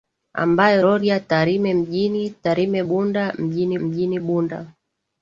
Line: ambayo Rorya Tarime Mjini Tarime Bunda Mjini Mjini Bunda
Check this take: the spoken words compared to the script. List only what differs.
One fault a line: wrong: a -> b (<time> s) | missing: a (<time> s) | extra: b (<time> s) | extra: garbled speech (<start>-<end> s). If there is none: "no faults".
no faults